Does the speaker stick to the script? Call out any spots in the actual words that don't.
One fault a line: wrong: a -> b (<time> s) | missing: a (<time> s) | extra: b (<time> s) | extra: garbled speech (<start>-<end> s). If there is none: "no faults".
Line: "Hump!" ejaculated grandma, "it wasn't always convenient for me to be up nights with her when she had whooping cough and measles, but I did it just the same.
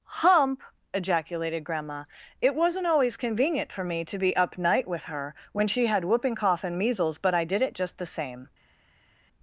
wrong: nights -> night (4.6 s)